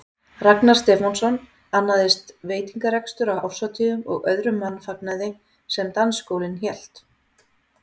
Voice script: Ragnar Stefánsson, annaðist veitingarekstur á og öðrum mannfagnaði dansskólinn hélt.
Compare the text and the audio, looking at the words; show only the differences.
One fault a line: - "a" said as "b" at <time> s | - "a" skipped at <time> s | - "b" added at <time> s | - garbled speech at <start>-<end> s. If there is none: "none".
- "árshátíðum" added at 3.5 s
- "sem" added at 5.8 s